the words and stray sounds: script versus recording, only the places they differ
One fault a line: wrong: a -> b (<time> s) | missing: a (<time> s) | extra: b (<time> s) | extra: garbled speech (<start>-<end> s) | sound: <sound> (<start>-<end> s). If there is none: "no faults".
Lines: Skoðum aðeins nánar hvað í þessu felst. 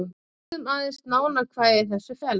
sound: dropout (0.4-0.5 s)